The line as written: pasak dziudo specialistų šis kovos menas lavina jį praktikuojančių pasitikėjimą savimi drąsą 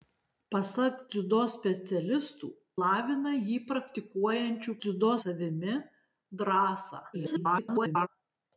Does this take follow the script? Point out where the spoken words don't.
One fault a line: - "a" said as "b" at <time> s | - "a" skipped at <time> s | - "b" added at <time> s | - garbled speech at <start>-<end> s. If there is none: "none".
- "šis kovos menas" skipped at 2.5 s
- "pasitikėjimą" said as "dziudo" at 4.9 s
- garbled speech at 7.1-8.1 s